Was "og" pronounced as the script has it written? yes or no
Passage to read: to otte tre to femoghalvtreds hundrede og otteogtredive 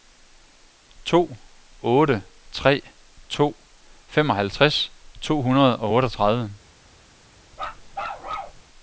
yes